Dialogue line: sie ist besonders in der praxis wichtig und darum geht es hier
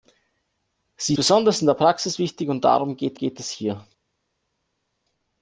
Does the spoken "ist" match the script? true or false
false